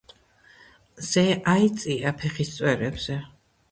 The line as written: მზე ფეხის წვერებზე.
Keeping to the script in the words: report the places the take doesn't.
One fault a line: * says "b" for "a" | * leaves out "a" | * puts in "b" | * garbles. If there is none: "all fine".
* puts in "აიწია"